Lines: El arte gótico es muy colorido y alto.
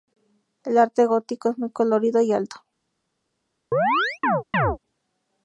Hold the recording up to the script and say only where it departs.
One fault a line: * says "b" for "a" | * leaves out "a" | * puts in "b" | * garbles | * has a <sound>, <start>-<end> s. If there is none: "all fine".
* has a chirp, 3.7-4.8 s